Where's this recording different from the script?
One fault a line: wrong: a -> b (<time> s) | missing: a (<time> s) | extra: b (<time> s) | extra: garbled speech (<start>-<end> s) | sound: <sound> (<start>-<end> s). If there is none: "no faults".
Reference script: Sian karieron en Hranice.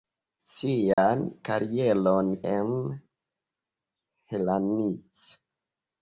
sound: dropout (0.9-1.0 s)